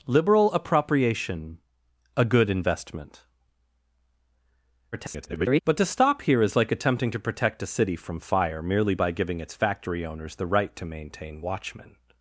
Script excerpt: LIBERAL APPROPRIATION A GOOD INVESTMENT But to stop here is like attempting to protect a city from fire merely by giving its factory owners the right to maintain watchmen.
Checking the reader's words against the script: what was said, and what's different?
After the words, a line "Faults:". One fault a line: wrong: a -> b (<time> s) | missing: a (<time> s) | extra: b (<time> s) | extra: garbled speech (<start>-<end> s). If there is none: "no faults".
LIBERAL APPROPRIATION A GOOD INVESTMENT [garbled] But to stop here is like attempting to protect a city from fire merely by giving its factory owners the right to maintain watchmen.
Faults:
extra: garbled speech (4.9-5.6 s)